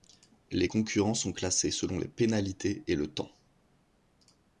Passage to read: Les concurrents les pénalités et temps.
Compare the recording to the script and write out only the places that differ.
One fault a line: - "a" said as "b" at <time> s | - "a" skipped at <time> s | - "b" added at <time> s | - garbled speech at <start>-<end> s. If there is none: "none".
- "sont classés selon" added at 1.2 s
- "le" added at 3.0 s